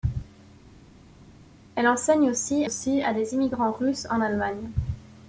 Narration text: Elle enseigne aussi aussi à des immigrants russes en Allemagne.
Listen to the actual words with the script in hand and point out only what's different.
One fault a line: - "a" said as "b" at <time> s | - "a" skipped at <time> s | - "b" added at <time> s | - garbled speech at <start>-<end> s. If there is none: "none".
none